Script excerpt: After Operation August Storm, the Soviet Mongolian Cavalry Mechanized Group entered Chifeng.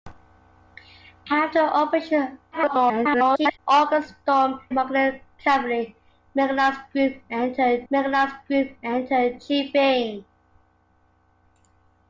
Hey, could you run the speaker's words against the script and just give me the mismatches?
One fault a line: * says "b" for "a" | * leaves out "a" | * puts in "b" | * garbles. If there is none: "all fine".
* garbles
* says "Mongolian Cavalry Mechanized Group entered" for "the Soviet Mongolian Cavalry"